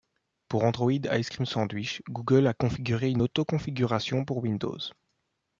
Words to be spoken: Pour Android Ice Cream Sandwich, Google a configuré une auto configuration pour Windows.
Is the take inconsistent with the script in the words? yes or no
no